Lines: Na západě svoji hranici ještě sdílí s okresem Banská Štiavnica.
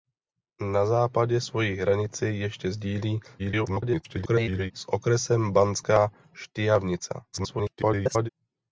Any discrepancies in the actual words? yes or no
yes